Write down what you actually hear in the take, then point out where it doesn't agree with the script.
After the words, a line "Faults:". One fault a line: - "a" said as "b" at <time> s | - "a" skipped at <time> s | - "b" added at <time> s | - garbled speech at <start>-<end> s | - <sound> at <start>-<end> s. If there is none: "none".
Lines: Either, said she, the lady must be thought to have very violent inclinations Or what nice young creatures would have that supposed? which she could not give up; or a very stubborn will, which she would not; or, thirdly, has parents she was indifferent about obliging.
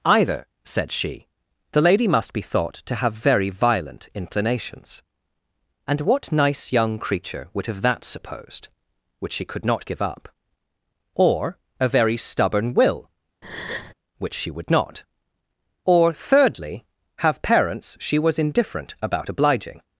Either, said she, the lady must be thought to have very violent inclinations And what nice young creature would have that supposed? which she could not give up; or a very stubborn will, which she would not; or, thirdly, have parents she was indifferent about obliging.
Faults:
- "Or" said as "And" at 5.9 s
- "creatures" said as "creature" at 7.0 s
- breath at 13.4-13.9 s
- "has" said as "have" at 17.2 s